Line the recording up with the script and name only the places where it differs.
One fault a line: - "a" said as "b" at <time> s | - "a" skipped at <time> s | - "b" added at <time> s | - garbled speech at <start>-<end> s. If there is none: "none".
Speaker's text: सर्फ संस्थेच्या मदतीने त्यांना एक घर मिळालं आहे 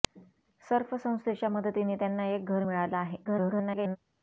- garbled speech at 3.2-4.0 s